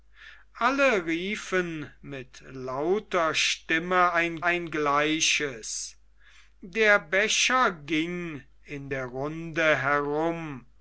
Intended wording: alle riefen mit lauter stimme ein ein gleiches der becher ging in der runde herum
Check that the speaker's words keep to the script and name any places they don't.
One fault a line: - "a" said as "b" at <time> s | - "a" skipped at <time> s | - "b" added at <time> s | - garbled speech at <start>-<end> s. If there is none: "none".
none